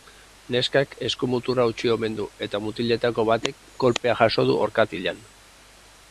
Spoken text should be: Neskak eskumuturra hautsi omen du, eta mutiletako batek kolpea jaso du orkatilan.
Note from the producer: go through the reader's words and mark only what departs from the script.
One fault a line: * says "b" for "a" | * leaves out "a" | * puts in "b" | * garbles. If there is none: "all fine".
all fine